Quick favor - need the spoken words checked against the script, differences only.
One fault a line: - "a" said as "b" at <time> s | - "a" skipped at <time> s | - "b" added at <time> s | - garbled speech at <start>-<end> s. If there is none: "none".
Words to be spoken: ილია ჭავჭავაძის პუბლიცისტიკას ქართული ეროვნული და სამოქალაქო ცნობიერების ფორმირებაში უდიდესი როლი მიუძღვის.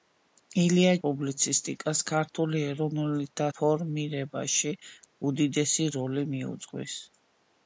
- "ჭავჭავაძის" skipped at 0.9 s
- "სამოქალაქო ცნობიერების" skipped at 3.5 s